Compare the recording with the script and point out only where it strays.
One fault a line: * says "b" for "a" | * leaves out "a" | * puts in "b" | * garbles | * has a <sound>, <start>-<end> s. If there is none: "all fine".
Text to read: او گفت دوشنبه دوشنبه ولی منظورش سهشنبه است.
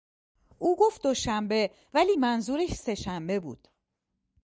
* leaves out "دوشنبه"
* says "بود" for "است"